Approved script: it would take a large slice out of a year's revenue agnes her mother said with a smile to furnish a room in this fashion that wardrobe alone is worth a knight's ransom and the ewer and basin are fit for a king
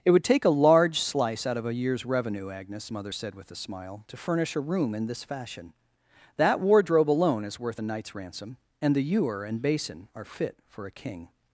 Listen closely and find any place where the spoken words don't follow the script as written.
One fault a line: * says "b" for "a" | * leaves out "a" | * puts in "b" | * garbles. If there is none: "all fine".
* leaves out "her"